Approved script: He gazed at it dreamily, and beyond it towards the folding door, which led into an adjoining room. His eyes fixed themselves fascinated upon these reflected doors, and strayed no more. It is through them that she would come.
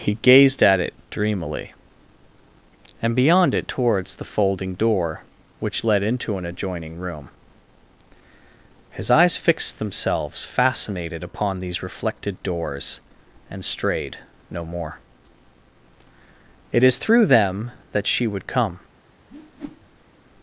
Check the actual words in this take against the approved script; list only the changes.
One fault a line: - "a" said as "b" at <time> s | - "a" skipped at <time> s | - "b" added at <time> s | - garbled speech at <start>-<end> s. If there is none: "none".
none